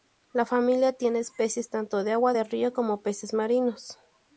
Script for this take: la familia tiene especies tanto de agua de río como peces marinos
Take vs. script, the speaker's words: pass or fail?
pass